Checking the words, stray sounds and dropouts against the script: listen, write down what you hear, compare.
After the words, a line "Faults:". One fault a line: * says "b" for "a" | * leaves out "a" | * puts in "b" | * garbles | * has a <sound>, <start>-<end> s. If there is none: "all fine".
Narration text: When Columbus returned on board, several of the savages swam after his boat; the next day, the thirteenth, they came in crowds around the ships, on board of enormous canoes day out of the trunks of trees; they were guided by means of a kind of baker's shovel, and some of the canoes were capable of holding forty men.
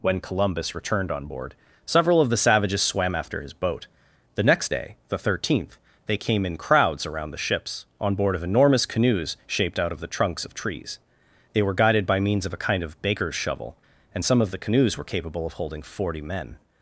When Columbus returned on board, several of the savages swam after his boat; the next day, the thirteenth, they came in crowds around the ships, on board of enormous canoes shaped out of the trunks of trees; they were guided by means of a kind of baker's shovel, and some of the canoes were capable of holding forty men.
Faults:
* says "shaped" for "day"